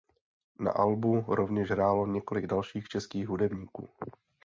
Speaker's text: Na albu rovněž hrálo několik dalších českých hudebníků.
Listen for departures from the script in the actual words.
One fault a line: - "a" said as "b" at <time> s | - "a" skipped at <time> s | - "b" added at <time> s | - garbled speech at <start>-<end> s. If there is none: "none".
none